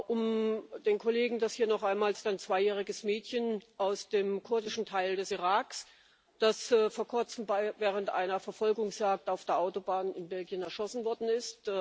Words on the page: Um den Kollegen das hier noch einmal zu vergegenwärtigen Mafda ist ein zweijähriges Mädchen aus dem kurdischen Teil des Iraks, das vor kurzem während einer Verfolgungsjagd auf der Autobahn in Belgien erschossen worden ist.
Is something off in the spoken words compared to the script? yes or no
yes